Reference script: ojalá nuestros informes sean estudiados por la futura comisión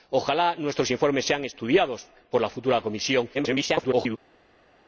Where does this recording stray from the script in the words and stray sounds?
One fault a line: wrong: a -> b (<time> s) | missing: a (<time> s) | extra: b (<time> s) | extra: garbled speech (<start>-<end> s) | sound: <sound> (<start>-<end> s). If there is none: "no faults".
extra: garbled speech (3.3-4.2 s)